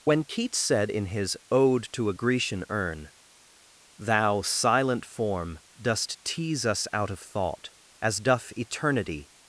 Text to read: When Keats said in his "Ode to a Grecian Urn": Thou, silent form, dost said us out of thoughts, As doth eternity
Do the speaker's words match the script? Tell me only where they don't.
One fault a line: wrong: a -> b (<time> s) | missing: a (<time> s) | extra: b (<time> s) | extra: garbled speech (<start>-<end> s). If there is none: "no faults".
wrong: said -> tease (6.2 s)
wrong: thoughts -> thought (7.2 s)